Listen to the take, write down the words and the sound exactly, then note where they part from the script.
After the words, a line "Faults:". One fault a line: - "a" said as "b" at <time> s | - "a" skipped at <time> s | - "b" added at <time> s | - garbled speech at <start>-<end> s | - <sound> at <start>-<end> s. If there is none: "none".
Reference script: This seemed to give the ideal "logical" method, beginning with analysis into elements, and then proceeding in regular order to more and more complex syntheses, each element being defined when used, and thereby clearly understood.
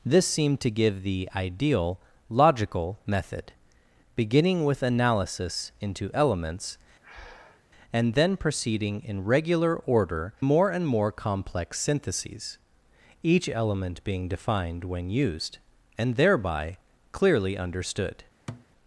This seemed to give the ideal "logical" method, beginning with analysis into elements, and then proceeding in regular order more and more complex syntheses, each element being defined when used, and thereby clearly understood.
Faults:
- breath at 7.0-7.6 s
- "to" skipped at 10.3 s
- thud at 18.5-18.7 s